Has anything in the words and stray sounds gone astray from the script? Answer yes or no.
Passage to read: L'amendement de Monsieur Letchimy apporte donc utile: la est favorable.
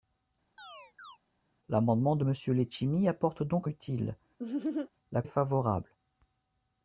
yes